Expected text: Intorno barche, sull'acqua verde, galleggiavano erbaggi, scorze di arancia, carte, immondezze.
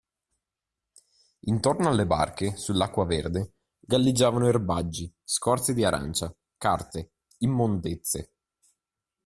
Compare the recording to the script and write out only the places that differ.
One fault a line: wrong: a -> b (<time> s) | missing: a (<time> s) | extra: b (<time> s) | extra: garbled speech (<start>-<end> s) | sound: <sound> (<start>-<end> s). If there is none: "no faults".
extra: alle (1.9 s)